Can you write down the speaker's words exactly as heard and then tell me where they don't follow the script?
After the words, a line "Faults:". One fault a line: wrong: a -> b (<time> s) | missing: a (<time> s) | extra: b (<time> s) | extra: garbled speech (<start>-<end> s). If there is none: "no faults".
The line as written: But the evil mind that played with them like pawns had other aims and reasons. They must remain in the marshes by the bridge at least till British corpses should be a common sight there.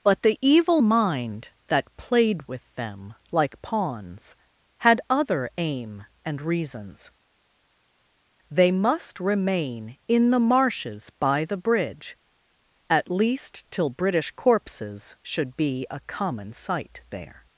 But the evil mind that played with them like pawns had other aim and reasons. They must remain in the marshes by the bridge at least till British corpses should be a common sight there.
Faults:
wrong: aims -> aim (5.6 s)